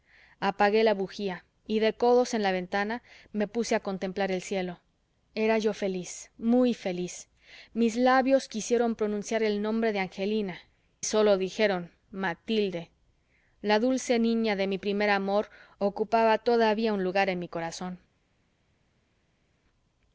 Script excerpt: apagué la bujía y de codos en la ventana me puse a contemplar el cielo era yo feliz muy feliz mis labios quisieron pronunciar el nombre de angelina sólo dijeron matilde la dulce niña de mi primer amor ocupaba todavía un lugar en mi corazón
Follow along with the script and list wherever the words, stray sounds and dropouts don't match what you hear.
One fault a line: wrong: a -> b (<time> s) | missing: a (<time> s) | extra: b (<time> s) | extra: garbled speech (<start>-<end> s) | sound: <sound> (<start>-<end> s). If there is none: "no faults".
no faults